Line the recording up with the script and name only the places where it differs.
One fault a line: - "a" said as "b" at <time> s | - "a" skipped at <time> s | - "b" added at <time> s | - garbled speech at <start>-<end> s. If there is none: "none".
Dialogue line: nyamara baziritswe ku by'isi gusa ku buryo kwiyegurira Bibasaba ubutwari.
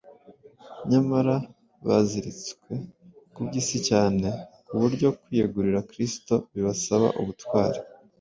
- "gusa" said as "cyane" at 3.9 s
- "Kristo" added at 5.9 s